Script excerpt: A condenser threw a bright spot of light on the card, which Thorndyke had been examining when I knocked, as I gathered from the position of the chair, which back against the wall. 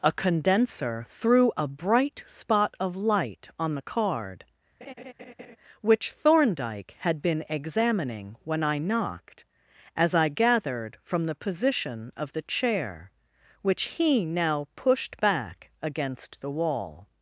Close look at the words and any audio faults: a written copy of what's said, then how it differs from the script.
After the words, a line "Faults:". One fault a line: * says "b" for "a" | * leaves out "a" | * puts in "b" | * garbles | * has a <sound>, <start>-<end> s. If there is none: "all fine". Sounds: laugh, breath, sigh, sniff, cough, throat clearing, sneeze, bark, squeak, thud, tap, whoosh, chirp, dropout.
A condenser threw a bright spot of light on the card, which Thorndyke had been examining when I knocked, as I gathered from the position of the chair, which he now pushed back against the wall.
Faults:
* has a laugh, 4.8-5.6 s
* puts in "he now pushed"